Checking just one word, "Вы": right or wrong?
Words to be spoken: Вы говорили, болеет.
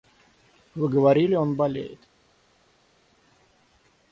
right